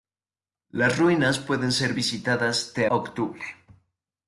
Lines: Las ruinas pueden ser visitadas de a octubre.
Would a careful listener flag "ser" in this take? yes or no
no